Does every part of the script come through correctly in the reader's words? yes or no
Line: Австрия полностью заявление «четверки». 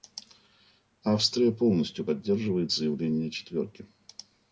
no